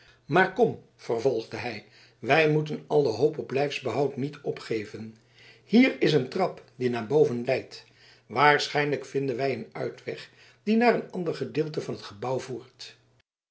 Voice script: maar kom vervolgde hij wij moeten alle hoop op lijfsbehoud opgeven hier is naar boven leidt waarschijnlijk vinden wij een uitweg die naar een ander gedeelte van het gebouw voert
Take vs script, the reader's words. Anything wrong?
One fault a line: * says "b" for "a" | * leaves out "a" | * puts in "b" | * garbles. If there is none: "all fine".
* puts in "niet"
* puts in "een trap die"